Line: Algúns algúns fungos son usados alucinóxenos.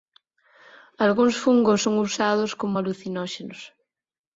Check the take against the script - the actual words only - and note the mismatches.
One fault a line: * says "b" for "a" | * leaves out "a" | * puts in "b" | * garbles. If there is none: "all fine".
* leaves out "algúns"
* puts in "como"